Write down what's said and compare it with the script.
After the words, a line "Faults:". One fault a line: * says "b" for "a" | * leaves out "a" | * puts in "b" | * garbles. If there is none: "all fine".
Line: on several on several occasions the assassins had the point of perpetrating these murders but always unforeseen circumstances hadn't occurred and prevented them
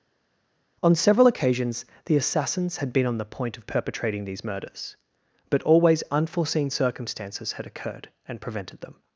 on several occasions the assassins had been on the point of perpetrating these murders but always unforeseen circumstances had occurred and prevented them
Faults:
* leaves out "on several"
* puts in "been on"
* says "had" for "hadn't"